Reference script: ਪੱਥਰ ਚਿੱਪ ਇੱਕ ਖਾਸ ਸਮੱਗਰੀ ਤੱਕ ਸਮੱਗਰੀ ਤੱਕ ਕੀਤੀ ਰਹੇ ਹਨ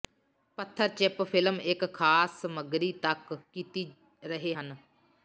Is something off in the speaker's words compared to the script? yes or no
yes